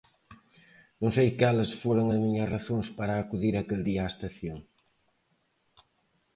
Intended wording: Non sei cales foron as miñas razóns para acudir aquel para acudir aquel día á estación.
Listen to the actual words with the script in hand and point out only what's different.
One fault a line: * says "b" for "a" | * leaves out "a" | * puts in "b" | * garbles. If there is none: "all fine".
* leaves out "para acudir aquel"